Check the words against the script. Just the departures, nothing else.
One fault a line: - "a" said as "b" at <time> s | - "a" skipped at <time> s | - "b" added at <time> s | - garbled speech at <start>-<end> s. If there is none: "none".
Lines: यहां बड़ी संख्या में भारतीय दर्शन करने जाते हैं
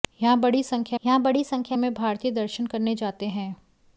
- "यहां बड़ी संख्या" added at 1.0 s